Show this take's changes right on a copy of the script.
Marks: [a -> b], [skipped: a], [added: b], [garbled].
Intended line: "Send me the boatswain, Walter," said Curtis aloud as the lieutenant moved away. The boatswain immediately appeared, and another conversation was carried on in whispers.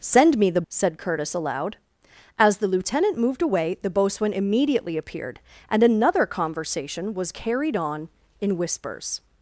"Send me the [skipped: boatswain, Walter,"] said Curtis aloud as the lieutenant moved away. The boatswain immediately appeared, and another conversation was carried on in whispers.